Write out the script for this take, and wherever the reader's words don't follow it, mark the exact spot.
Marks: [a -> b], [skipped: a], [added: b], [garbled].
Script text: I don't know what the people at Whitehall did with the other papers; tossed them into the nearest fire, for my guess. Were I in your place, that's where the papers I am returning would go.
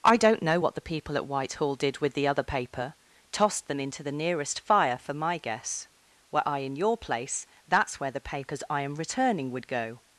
I don't know what the people at Whitehall did with the other [papers; -> paper] tossed them into the nearest fire, for my guess. Were I in your place, that's where the papers I am returning would go.